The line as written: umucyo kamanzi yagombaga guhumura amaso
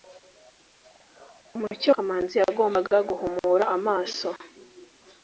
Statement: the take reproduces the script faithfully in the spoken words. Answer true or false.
true